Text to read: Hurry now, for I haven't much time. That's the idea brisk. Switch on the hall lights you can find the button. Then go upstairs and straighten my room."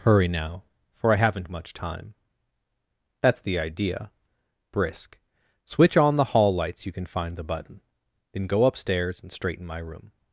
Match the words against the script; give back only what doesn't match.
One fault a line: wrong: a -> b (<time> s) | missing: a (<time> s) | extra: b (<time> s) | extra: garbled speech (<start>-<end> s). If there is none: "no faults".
no faults